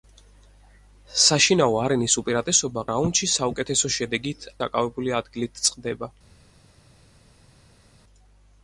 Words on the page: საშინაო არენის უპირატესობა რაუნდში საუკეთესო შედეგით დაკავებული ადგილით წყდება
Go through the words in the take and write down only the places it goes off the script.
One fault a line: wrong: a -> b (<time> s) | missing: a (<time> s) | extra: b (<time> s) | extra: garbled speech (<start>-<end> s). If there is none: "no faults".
no faults